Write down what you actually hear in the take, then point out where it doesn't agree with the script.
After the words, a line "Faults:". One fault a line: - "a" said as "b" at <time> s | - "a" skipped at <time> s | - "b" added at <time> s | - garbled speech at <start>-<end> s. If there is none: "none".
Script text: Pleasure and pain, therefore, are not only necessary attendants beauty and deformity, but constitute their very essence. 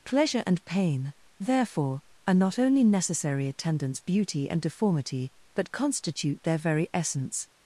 Pleasure and pain, therefore, are not only necessary attendants beauty and deformity, but constitute their very essence.
Faults:
none